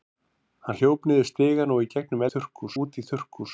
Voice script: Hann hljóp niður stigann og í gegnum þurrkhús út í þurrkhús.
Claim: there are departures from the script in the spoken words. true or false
false